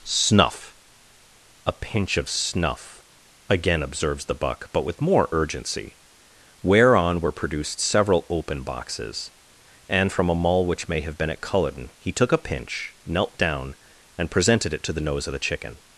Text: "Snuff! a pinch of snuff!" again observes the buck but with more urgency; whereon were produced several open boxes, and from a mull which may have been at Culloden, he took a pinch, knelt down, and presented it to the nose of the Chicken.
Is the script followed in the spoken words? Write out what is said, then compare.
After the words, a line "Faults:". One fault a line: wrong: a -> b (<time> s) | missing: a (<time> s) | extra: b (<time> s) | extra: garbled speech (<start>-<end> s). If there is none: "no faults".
"Snuff! a pinch of snuff!" again observes the buck but with more urgency; whereon were produced several open boxes, and from a mull which may have been at Culloden, he took a pinch, knelt down, and presented it to the nose of the Chicken.
Faults:
no faults